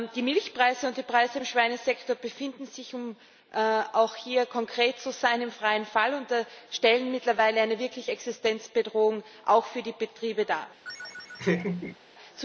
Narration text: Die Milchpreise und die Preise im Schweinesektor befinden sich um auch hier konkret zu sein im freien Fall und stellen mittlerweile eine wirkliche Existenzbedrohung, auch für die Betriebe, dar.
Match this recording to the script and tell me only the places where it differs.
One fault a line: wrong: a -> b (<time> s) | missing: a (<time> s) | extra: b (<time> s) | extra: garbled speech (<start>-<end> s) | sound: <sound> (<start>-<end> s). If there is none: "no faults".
sound: laugh (10.8-12.0 s)